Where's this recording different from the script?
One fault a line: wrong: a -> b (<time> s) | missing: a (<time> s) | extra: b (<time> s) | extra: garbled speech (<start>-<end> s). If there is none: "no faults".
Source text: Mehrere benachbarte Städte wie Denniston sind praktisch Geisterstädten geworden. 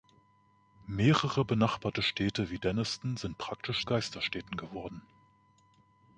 no faults